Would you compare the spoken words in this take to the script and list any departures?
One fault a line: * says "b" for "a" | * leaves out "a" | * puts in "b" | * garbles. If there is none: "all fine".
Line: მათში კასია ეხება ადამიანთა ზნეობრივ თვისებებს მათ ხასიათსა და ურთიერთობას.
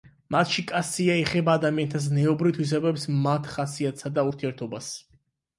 all fine